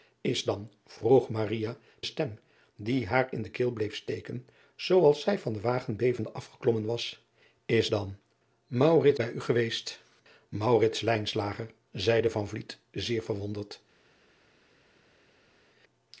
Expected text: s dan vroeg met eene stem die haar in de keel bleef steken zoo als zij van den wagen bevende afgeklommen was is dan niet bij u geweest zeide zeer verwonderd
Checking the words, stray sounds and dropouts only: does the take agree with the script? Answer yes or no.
no